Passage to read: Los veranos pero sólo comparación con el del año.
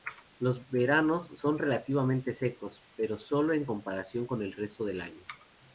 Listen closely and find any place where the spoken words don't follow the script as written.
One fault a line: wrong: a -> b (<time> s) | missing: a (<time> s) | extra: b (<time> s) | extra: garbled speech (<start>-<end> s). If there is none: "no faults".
extra: son relativamente secos (1.4 s)
extra: en (3.5 s)
extra: resto (4.5 s)